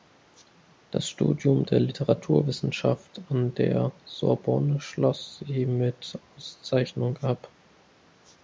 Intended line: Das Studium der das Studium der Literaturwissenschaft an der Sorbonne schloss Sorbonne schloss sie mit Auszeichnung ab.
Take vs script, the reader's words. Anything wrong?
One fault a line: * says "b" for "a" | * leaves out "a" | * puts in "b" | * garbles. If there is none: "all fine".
* leaves out "das Studium der"
* leaves out "Sorbonne schloss"